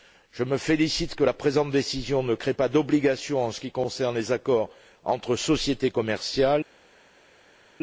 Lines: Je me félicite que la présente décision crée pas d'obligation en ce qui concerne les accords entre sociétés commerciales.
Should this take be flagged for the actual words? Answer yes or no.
yes